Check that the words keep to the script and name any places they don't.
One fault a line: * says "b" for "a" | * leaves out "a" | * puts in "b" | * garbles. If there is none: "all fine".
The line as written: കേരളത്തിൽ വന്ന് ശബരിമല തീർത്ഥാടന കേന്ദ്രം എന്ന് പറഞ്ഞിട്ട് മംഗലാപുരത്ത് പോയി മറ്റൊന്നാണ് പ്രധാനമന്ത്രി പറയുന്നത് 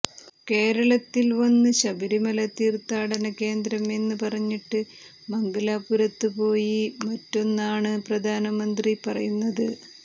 all fine